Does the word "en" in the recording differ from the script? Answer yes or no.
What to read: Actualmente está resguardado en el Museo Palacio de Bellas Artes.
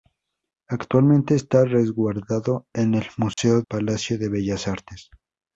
no